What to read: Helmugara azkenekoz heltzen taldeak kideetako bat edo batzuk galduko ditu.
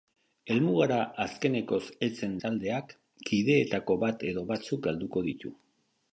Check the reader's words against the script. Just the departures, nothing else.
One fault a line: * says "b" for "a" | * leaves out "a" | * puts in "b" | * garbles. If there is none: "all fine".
all fine